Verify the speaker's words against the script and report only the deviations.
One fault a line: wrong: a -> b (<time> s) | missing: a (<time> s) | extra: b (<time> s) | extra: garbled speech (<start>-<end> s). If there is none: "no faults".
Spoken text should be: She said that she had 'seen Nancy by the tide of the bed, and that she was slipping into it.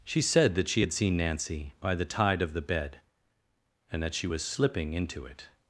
no faults